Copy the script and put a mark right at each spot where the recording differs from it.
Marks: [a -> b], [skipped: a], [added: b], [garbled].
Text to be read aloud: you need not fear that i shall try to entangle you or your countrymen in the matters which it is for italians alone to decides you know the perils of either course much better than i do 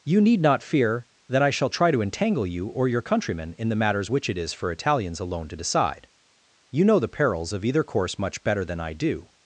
you need not fear that i shall try to entangle you or your countrymen in the matters which it is for italians alone to [decides -> decide] you know the perils of either course much better than i do